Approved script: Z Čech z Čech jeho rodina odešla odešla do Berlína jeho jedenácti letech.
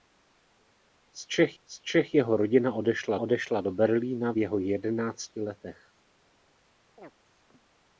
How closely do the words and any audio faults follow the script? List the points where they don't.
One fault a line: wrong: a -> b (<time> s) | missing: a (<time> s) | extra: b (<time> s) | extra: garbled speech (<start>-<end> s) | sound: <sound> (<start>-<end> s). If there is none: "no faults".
sound: chirp (7.0-7.1 s)